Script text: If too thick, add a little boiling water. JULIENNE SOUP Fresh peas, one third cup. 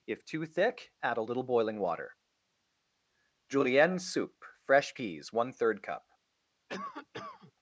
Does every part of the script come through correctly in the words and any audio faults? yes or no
no